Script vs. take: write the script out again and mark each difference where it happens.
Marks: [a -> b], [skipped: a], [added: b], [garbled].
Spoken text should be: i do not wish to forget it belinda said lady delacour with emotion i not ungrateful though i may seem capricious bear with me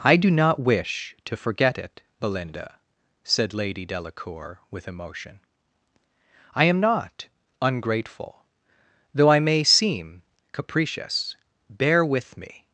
i do not wish to forget it belinda said lady delacour with emotion i [added: am] not ungrateful though i may seem capricious bear with me